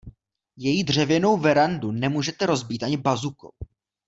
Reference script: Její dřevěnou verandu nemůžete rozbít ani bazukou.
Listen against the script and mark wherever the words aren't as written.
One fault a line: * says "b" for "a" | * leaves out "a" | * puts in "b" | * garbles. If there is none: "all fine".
all fine